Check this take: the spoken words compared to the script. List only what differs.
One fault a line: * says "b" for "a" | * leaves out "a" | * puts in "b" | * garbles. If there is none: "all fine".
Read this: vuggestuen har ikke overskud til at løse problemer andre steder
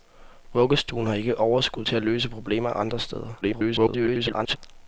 * garbles